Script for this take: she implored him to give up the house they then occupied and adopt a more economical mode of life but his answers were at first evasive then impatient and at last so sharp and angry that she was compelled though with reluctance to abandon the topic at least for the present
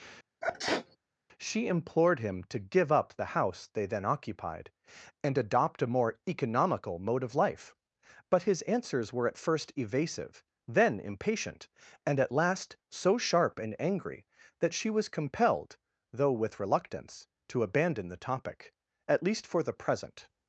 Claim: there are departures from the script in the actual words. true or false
false